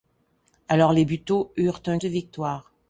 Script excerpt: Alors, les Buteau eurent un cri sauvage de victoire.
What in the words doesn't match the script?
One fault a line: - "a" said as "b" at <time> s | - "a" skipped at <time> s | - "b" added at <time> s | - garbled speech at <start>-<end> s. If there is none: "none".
- "cri sauvage" skipped at 2.0 s